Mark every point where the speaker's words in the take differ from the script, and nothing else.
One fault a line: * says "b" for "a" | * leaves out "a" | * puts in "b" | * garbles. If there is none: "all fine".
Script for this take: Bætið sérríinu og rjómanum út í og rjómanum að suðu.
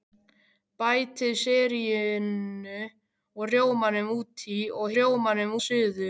all fine